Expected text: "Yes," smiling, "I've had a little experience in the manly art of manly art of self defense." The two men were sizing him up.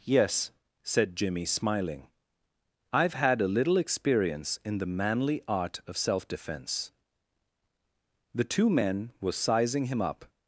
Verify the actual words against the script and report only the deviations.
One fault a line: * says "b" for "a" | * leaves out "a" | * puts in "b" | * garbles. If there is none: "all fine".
* puts in "said Jimmy"
* leaves out "manly art of"